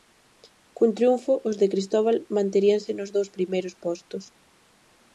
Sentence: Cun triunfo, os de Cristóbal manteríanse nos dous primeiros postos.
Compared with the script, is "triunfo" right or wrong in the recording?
right